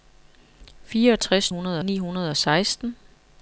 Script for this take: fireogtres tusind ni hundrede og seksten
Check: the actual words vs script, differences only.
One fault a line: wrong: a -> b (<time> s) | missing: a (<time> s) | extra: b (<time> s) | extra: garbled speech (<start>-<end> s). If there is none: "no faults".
wrong: tusind -> hundrede (1.5 s)